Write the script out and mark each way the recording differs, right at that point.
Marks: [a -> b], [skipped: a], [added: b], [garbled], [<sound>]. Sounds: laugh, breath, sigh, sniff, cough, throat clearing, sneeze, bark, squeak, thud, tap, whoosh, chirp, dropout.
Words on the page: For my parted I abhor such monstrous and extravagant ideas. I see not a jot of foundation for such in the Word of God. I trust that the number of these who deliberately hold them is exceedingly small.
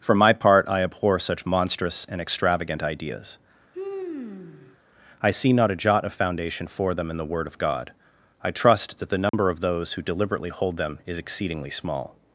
For my [parted -> part] I abhor such monstrous and extravagant ideas. [sigh] I see not a jot of foundation for [such -> them] in the Word of God. I trust that the number [dropout] of [these -> those] who deliberately hold them is exceedingly small.